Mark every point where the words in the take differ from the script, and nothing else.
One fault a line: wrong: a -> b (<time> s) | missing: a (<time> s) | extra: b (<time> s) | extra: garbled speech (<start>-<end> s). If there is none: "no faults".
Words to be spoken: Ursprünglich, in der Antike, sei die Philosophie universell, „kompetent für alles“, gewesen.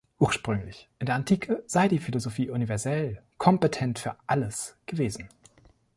no faults